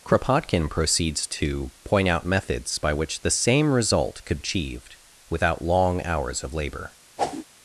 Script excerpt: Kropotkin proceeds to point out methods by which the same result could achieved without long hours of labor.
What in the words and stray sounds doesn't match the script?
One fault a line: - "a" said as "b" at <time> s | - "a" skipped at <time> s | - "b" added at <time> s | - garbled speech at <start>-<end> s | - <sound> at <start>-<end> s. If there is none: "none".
- whoosh at 7.2-7.5 s